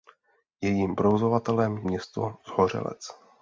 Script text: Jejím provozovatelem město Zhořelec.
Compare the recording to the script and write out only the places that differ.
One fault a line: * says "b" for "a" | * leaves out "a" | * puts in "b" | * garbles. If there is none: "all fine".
all fine